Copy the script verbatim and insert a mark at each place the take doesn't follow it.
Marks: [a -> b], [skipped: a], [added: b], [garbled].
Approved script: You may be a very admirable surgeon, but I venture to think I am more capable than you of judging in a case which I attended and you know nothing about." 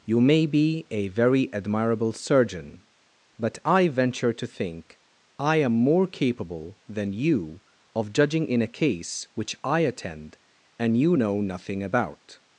You may be a very admirable surgeon, but I venture to think I am more capable than you of judging in a case which I [attended -> attend] and you know nothing about."